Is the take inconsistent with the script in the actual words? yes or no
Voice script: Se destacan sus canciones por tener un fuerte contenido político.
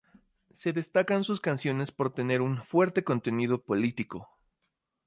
no